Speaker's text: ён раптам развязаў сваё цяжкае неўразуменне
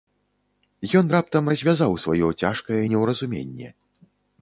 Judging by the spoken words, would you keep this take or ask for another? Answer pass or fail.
pass